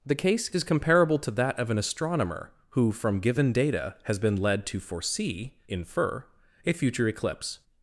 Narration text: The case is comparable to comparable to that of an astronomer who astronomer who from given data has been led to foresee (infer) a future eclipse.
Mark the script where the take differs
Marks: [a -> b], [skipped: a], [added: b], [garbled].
The case is comparable to [skipped: comparable to] that of an astronomer who [skipped: astronomer who] from given data has been led to foresee (infer) a future eclipse.